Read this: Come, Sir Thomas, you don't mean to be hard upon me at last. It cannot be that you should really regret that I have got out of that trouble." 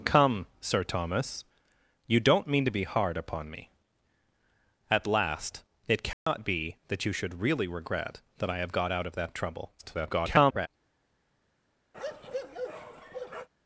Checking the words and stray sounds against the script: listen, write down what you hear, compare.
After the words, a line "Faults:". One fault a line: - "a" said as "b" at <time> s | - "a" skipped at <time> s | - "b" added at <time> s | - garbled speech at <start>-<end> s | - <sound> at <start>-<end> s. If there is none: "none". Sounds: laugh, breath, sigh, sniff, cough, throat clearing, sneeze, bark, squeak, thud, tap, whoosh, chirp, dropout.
Come, Sir Thomas, you don't mean to be hard upon me at last. It cannot be that you should really regret that I have got out of that trouble." [garbled]
Faults:
- dropout at 6.1-6.3 s
- garbled speech at 9.8-10.7 s
- bark at 11.9-13.5 s